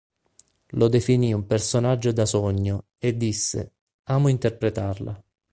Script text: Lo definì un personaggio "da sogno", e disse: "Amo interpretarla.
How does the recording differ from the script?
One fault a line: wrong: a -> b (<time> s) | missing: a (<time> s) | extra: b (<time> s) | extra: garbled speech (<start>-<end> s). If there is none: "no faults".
no faults